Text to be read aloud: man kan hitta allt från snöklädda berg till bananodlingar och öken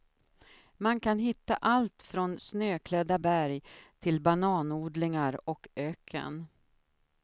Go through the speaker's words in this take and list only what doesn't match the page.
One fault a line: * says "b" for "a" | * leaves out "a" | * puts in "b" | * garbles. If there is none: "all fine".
all fine